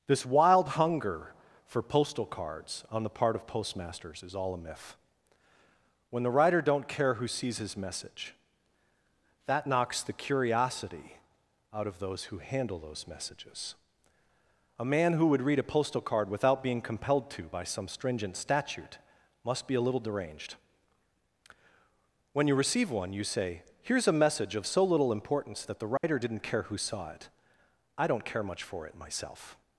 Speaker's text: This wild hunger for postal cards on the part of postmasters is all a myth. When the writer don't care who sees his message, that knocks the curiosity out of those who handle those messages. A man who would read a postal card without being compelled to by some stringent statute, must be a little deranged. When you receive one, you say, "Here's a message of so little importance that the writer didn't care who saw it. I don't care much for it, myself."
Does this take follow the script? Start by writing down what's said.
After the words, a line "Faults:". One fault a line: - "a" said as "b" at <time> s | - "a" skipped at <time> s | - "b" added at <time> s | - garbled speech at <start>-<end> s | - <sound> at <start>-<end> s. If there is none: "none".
This wild hunger for postal cards on the part of postmasters is all a myth. When the writer don't care who sees his message, that knocks the curiosity out of those who handle those messages. A man who would read a postal card without being compelled to by some stringent statute, must be a little deranged. When you receive one, you say, "Here's a message of so little importance that the writer didn't care who saw it. I don't care much for it, myself."
Faults:
- dropout at 26.0-26.0 s